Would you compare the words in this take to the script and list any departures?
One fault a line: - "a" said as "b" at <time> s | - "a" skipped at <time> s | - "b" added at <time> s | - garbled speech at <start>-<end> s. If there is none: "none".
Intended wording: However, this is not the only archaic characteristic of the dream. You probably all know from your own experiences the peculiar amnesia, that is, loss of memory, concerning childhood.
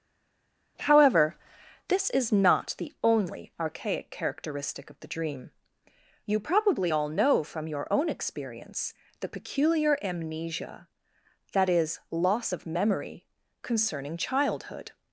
- "experiences" said as "experience" at 8.1 s